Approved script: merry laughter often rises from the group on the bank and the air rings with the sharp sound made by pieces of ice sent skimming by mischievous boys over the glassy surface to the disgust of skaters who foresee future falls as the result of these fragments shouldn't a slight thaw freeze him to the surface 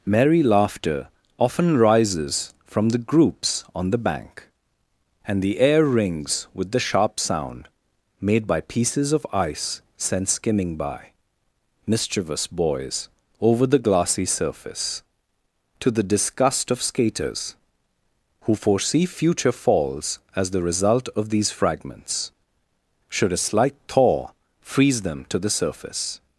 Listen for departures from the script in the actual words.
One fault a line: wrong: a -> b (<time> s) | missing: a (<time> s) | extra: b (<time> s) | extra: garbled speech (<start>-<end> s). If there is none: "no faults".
wrong: group -> groups (3.0 s)
wrong: shouldn't -> should (23.1 s)
wrong: him -> them (25.0 s)